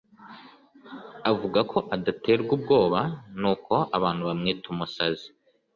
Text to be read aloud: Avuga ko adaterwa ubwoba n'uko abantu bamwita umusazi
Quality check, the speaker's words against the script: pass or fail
pass